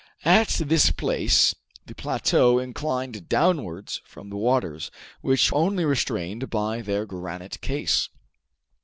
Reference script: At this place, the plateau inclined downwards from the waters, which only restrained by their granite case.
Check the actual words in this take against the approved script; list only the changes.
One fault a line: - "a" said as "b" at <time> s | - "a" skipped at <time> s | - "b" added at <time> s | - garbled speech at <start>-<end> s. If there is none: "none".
none